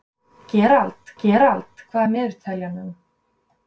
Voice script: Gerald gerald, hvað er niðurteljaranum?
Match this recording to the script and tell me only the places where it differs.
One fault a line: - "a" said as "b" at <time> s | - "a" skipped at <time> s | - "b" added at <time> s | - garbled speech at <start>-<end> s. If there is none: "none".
none